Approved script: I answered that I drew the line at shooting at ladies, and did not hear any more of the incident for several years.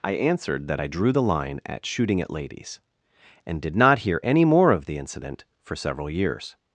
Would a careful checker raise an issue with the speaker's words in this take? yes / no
no